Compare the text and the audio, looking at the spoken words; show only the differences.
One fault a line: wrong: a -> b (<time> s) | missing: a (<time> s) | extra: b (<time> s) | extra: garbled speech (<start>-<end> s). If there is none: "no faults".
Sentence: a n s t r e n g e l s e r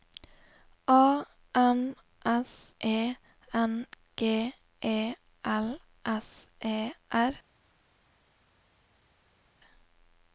missing: t r (2.7 s)